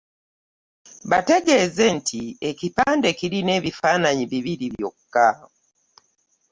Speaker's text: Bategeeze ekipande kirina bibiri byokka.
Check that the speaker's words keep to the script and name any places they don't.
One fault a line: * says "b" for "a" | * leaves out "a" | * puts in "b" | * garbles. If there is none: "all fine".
* puts in "nti"
* puts in "ebifaananyi"